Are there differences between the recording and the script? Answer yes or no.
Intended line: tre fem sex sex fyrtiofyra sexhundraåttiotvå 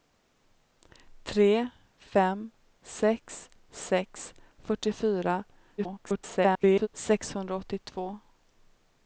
yes